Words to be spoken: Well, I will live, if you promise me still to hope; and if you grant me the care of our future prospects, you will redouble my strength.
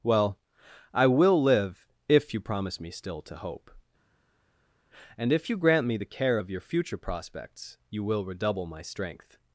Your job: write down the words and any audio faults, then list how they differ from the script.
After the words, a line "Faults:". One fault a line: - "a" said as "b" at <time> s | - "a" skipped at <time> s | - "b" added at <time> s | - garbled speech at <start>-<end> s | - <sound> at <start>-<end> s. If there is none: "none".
Well, I will live, if you promise me still to hope; and if you grant me the care of your future prospects, you will redouble my strength.
Faults:
- "our" said as "your" at 6.5 s